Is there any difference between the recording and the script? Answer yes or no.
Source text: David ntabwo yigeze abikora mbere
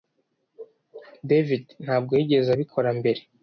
no